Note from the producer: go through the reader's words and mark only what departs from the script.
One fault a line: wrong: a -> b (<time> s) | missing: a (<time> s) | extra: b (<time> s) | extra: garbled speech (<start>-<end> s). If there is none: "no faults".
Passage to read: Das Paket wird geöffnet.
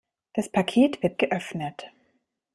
no faults